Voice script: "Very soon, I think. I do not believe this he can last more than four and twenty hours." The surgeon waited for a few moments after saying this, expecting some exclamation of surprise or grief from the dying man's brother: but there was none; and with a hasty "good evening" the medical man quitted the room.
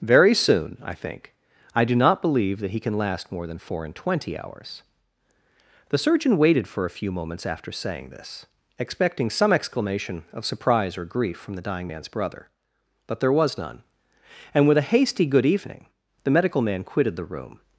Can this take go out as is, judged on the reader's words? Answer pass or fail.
fail